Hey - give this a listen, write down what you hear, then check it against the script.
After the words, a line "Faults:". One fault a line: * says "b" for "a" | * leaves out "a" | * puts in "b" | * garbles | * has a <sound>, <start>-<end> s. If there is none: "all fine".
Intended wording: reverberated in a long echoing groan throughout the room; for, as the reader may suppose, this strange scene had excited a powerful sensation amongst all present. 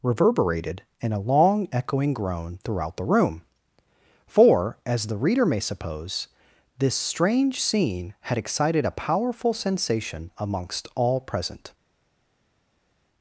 reverberated in a long echoing groan throughout the room; for, as the reader may suppose, this strange scene had excited a powerful sensation amongst all present.
Faults:
all fine